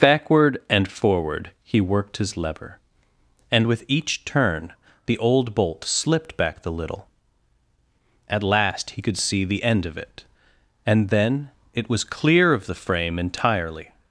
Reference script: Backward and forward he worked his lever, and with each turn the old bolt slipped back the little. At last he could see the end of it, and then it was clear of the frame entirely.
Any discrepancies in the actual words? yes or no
no